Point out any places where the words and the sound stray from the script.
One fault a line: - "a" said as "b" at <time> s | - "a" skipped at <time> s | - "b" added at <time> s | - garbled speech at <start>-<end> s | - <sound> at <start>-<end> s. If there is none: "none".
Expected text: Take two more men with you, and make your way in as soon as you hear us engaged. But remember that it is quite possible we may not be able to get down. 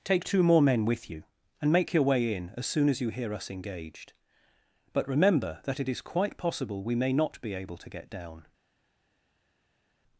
none